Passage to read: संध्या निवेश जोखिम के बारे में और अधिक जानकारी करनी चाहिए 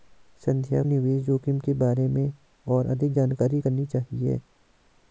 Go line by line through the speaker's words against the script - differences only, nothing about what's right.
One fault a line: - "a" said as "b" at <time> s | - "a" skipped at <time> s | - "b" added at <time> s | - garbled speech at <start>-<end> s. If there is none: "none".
none